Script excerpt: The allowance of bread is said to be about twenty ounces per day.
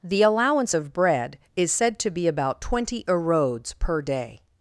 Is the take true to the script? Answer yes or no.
no